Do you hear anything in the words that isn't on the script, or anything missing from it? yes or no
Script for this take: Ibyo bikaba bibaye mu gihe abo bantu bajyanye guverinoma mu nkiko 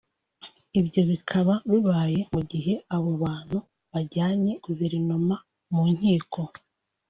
no